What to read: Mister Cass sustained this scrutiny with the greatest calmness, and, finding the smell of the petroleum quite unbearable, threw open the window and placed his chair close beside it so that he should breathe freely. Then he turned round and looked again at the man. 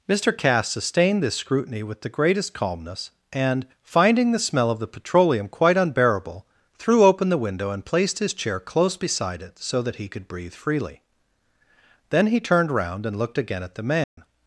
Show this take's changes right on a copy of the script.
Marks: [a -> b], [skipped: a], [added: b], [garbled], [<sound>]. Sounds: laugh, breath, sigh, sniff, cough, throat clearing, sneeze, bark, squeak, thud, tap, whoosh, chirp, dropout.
Mister Cass sustained this scrutiny with the greatest calmness, and, finding the smell of the petroleum quite unbearable, threw open the window and placed his chair close beside it so that he [should -> could] breathe freely. Then he turned round and looked again at the man. [dropout]